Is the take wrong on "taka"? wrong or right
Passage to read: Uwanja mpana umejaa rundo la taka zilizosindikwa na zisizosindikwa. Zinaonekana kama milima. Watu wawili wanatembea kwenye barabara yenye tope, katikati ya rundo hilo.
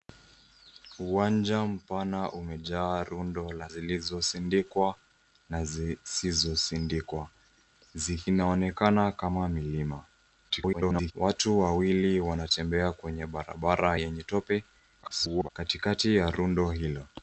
wrong